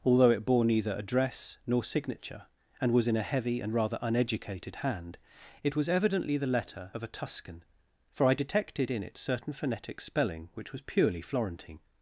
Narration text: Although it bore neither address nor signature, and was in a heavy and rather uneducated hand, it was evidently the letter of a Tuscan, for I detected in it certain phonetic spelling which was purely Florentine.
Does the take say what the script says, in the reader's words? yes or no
yes